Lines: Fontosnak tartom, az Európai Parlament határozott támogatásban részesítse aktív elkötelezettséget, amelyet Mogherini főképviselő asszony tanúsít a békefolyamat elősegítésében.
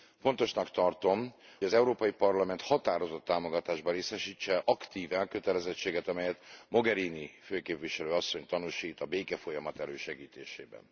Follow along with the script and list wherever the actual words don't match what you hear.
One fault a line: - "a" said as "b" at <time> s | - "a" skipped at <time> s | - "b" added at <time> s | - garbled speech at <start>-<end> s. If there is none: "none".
none